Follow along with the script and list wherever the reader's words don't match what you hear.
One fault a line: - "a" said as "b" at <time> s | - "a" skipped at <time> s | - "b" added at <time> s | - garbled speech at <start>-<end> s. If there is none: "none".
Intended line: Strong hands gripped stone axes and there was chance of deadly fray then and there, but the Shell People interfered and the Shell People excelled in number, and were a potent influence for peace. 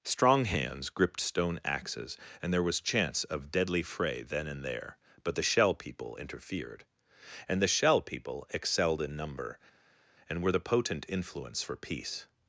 - "a" said as "the" at 10.5 s